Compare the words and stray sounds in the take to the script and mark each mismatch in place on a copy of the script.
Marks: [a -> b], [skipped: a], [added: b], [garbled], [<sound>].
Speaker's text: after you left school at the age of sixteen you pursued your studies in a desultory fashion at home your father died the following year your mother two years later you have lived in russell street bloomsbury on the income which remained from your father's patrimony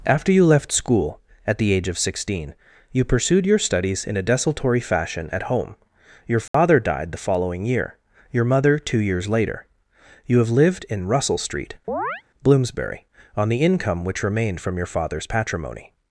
after you left school at the age of sixteen you pursued your studies in a desultory fashion at home your father [dropout] died the following year your mother two years later you have lived in russell street [chirp] bloomsbury on the income which remained from your father's patrimony